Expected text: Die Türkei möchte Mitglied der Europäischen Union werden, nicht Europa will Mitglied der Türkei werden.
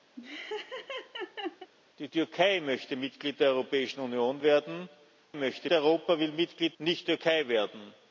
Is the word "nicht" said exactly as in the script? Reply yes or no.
no